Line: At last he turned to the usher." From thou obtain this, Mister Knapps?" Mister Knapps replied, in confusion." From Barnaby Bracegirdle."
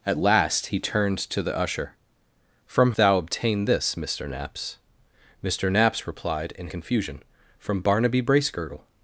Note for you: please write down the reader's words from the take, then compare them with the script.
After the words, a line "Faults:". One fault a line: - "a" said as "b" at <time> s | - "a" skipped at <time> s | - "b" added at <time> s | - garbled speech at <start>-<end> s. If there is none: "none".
At last he turned to the usher." From thou obtain this, Mister Knapps?" Mister Knapps replied, in confusion." From Barnaby Bracegirdle."
Faults:
none